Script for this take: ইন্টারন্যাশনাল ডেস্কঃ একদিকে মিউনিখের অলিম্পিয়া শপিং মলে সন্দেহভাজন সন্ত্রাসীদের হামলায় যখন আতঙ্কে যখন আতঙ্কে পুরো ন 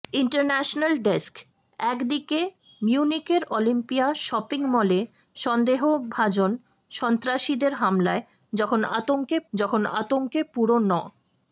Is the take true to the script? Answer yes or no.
yes